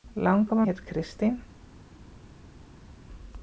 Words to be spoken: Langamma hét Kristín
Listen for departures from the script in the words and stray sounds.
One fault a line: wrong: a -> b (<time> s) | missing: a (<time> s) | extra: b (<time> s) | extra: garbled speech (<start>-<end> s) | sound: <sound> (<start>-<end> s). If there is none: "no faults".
no faults